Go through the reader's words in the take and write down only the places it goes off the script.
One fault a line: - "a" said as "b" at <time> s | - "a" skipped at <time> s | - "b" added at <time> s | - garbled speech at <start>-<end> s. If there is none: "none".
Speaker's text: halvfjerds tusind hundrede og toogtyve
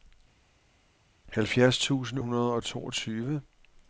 none